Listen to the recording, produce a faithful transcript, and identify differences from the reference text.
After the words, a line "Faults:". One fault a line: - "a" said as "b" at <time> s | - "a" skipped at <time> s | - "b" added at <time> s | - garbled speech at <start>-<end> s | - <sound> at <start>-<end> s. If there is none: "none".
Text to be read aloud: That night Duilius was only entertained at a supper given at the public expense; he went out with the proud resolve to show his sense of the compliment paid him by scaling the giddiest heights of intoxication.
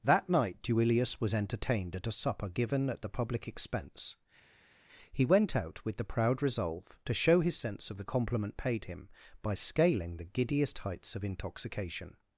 That night Duilius was entertained at a supper given at the public expense; he went out with the proud resolve to show his sense of the compliment paid him by scaling the giddiest heights of intoxication.
Faults:
- "only" skipped at 1.3 s